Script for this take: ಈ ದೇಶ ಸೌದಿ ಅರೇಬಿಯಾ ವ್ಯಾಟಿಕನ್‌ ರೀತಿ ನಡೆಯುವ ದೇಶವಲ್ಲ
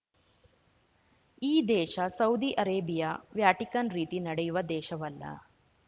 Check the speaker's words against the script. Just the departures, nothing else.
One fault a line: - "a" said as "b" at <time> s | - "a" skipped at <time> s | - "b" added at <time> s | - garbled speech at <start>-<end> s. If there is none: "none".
none